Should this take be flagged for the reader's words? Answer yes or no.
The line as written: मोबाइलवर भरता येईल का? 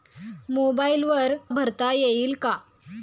no